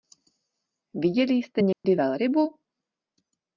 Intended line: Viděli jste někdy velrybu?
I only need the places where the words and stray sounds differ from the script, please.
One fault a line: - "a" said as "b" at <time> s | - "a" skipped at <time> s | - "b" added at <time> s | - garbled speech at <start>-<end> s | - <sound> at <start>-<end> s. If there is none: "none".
- dropout at 1.7-1.8 s